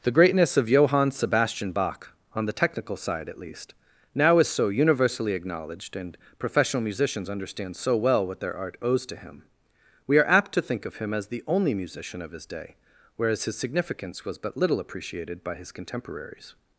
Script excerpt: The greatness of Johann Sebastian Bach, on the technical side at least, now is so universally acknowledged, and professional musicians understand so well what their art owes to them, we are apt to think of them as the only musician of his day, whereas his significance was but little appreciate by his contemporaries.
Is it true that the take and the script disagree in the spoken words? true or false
true